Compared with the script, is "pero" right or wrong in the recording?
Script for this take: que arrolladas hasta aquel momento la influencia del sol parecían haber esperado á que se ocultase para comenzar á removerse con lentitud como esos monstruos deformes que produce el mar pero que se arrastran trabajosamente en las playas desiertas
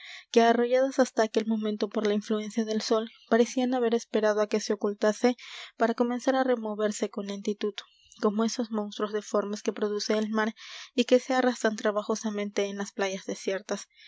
wrong